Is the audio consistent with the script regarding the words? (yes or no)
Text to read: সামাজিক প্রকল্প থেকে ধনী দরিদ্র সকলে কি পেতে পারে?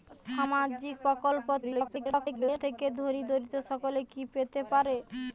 no